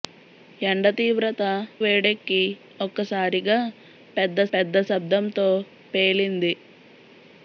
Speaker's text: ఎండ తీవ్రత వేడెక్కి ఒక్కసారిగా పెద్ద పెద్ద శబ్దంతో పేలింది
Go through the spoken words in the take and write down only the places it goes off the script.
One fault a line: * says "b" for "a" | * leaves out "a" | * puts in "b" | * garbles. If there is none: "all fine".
all fine